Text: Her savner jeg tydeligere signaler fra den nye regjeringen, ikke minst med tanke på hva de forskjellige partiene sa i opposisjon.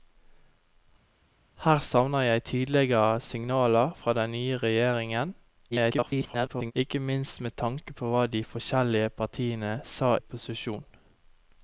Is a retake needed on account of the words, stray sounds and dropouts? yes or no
yes